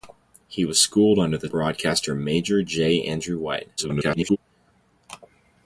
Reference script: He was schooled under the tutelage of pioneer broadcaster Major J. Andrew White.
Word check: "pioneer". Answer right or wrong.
wrong